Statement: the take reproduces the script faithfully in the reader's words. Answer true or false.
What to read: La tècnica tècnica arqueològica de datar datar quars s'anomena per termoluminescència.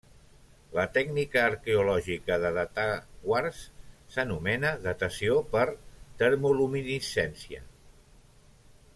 false